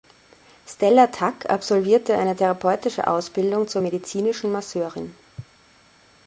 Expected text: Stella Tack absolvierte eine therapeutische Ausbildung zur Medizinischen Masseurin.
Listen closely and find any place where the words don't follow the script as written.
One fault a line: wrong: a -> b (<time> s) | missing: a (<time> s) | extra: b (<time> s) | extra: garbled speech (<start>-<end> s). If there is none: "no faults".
no faults